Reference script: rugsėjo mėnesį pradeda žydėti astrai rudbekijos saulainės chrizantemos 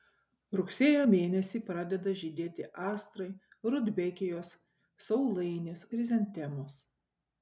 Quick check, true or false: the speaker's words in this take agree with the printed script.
true